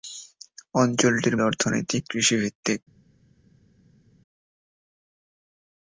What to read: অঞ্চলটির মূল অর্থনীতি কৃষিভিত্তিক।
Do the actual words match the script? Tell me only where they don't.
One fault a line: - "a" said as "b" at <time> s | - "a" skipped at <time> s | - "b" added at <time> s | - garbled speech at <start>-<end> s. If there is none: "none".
- "মূল" skipped at 1.4 s